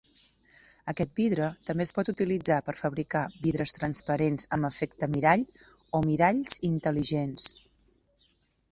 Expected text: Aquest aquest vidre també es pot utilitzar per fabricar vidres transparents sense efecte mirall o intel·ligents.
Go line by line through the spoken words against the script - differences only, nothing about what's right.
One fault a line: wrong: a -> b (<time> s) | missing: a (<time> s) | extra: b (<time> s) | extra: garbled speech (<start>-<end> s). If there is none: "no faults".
missing: aquest (1.1 s)
wrong: sense -> amb (4.6 s)
extra: miralls (6.1 s)